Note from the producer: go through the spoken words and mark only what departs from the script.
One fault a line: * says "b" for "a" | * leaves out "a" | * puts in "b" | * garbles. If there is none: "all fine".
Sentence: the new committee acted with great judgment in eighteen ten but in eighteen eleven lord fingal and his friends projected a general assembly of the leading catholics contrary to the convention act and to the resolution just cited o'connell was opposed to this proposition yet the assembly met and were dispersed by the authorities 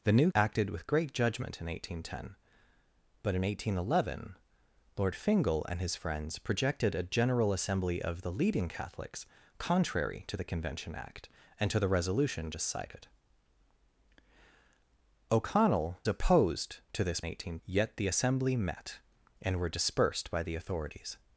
* leaves out "committee"
* leaves out "was"
* says "eighteen" for "proposition"